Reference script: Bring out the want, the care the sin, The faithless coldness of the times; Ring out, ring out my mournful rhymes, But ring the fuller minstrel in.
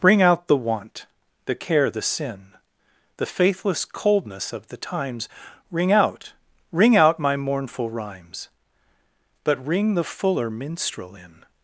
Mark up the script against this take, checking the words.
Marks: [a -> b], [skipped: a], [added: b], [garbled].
Bring out the want, the care the sin, The faithless coldness of the times; Ring out, ring out my mournful rhymes, But ring the fuller minstrel in.